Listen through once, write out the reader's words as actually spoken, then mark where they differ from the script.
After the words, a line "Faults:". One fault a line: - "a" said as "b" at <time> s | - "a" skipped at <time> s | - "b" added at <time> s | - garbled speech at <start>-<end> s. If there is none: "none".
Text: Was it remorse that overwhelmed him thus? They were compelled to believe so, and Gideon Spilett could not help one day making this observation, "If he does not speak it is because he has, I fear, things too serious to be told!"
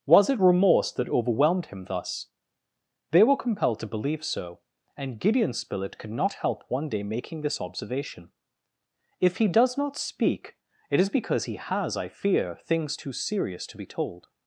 Was it remorse that overwhelmed him thus? They were compelled to believe so, and Gideon Spilett could not help one day making this observation, "If he does not speak it is because he has, I fear, things too serious to be told!"
Faults:
none